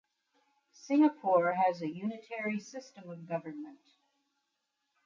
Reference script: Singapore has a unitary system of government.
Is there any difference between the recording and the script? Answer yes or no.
no